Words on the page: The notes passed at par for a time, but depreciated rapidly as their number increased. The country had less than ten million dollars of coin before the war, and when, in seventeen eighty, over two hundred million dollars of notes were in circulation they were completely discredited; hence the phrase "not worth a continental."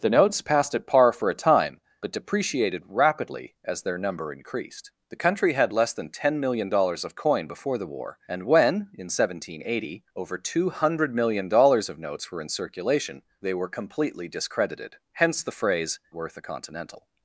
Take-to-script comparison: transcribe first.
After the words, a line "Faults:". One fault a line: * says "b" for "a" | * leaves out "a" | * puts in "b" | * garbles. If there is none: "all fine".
The notes passed at par for a time, but depreciated rapidly as their number increased. The country had less than ten million dollars of coin before the war, and when, in seventeen eighty, over two hundred million dollars of notes were in circulation they were completely discredited; hence the phrase "worth a continental."
Faults:
* leaves out "not"